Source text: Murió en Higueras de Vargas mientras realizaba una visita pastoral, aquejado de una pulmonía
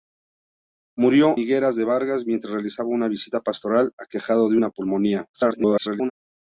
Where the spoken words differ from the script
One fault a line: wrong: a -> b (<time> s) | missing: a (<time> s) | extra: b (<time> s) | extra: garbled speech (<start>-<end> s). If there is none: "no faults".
missing: en (1.4 s)
extra: garbled speech (5.3-6.1 s)